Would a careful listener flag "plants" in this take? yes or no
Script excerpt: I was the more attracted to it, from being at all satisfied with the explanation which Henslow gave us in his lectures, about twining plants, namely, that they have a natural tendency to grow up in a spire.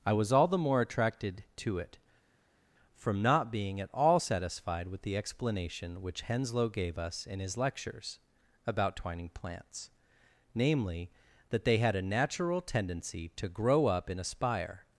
no